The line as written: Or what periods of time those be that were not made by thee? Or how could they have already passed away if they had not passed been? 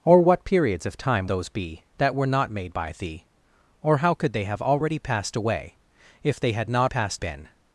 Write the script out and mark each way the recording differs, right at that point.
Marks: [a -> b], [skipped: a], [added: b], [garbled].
Or what periods of time those be that were not made by thee? Or how could they have already passed away if they had not passed been?